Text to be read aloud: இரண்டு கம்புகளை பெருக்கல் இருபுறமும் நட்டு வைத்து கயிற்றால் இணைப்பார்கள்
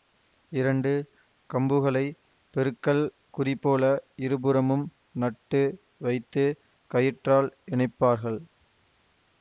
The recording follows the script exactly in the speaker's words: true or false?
false